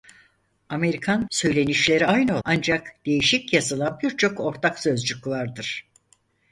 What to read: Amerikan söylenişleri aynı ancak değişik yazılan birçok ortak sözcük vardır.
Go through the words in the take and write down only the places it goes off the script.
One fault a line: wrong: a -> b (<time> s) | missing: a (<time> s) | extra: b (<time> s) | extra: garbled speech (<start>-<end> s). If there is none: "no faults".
no faults